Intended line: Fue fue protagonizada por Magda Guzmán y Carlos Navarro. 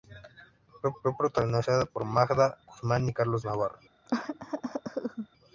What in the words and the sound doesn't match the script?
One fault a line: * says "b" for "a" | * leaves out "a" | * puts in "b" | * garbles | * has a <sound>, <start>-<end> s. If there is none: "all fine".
* has a cough, 4.1-5.3 s